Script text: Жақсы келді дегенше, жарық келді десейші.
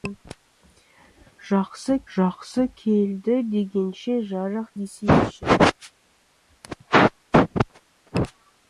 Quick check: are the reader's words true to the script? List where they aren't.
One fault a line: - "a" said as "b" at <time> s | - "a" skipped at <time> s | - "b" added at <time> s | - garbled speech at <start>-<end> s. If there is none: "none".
- "жақсы" added at 2.2 s
- "келді" skipped at 4.7 s